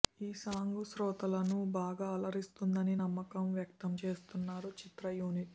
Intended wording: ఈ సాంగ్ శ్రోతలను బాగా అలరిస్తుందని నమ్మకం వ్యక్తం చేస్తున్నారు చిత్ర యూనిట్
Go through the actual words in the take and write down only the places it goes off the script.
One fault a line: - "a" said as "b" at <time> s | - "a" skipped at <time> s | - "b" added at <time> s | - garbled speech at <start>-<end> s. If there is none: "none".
none